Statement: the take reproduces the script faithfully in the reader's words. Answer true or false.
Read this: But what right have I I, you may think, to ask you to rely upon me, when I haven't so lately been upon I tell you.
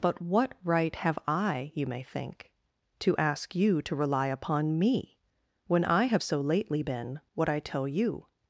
false